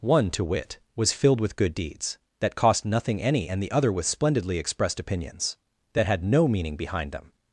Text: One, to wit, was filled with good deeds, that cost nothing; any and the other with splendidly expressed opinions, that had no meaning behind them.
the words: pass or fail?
pass